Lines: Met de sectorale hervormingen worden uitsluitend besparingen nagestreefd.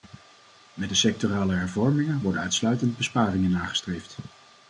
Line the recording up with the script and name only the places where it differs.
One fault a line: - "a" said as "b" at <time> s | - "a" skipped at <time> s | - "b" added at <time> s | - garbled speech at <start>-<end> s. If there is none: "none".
none